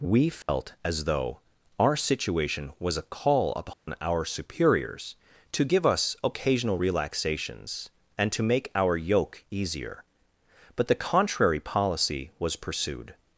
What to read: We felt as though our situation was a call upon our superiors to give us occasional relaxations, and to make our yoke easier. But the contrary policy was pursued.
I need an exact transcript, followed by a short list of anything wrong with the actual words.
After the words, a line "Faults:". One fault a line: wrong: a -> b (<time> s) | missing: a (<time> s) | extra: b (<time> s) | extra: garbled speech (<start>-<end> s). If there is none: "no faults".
We felt as though our situation was a call upon our superiors to give us occasional relaxations, and to make our yoke easier. But the contrary policy was pursued.
Faults:
no faults